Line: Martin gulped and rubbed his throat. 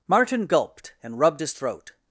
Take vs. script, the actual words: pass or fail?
pass